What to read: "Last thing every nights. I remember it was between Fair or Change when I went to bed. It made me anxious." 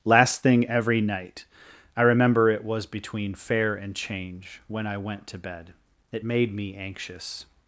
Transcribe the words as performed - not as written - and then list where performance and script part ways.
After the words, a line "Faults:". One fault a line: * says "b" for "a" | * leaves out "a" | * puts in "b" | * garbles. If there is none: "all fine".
"Last thing every night. I remember it was between Fair and Change when I went to bed. It made me anxious."
Faults:
* says "night" for "nights"
* says "and" for "or"